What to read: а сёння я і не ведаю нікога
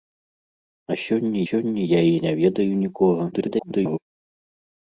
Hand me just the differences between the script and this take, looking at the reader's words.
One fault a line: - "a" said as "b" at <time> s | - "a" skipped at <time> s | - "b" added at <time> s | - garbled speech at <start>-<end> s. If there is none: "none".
- "сёння" added at 1.5 s
- garbled speech at 3.3-4.0 s